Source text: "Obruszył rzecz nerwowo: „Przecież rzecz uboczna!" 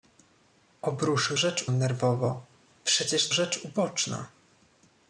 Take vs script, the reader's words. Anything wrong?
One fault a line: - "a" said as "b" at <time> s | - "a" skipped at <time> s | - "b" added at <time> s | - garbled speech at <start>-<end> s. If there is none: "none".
none